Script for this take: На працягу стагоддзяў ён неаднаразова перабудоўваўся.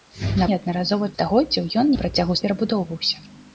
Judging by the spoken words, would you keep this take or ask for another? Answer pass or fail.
fail